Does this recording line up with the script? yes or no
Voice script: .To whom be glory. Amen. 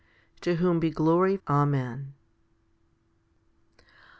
yes